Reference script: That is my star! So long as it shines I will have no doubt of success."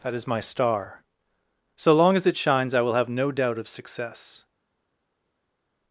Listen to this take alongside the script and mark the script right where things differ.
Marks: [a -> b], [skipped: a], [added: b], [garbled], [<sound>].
That is my star! So long as it shines I will have no doubt of success."